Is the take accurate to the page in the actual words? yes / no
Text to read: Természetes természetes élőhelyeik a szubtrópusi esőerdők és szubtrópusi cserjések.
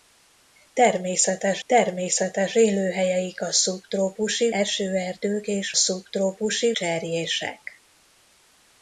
yes